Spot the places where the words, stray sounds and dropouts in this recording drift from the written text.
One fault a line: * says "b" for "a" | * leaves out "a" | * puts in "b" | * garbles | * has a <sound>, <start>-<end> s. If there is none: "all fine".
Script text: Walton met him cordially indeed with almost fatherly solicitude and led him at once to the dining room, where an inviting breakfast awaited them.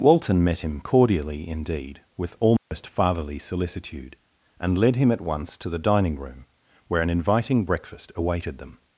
* has a dropout, 2.6-2.7 s